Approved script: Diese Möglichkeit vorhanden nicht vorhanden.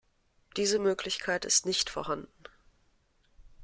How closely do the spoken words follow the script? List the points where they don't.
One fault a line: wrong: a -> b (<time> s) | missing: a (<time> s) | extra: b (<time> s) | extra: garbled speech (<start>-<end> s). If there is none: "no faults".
wrong: vorhanden -> ist (1.4 s)